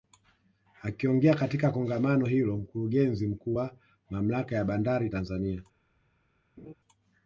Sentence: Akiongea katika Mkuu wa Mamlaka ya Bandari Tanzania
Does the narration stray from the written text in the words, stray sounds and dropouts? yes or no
yes